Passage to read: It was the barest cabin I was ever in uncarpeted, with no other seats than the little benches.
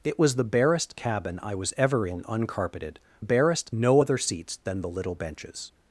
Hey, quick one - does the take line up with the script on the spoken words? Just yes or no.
no